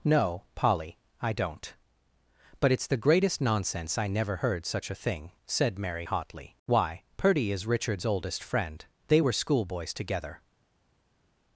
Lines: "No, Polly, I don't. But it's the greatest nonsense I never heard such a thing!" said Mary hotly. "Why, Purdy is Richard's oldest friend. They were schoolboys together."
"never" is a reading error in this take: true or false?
false